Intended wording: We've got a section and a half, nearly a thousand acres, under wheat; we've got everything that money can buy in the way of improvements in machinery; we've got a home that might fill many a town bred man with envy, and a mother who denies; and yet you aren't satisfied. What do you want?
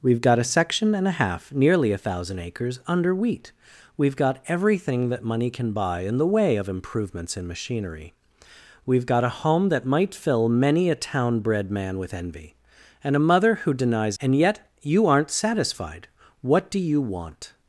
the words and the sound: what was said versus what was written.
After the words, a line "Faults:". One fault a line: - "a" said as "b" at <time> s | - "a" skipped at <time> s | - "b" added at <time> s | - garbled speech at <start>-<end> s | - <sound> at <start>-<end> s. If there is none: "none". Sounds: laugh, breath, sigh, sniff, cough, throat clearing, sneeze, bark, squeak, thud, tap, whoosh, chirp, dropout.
We've got a section and a half, nearly a thousand acres, under wheat; we've got everything that money can buy in the way of improvements in machinery; we've got a home that might fill many a town bred man with envy, and a mother who denies; and yet you aren't satisfied. What do you want?
Faults:
none